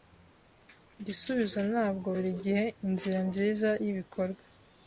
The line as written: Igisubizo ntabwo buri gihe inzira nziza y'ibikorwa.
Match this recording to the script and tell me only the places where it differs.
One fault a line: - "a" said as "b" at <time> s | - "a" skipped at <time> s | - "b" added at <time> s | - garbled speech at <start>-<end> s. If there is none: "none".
none